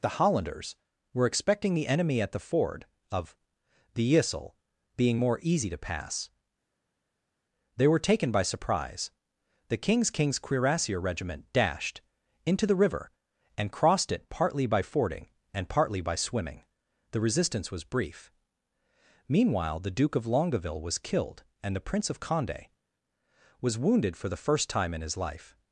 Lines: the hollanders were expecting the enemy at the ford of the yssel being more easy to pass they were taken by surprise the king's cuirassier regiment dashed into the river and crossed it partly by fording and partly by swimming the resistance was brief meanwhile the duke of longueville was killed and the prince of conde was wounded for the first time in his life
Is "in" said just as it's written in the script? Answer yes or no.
yes